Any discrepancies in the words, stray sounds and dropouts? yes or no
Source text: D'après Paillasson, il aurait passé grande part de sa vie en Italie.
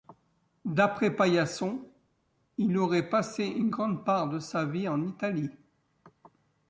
yes